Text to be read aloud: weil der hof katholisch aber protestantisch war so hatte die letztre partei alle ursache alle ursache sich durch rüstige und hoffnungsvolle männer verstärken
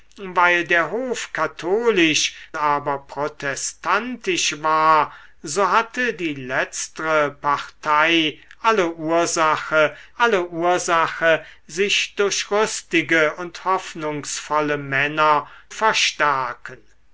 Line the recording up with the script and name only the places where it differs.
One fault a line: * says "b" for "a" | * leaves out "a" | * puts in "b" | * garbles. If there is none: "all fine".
all fine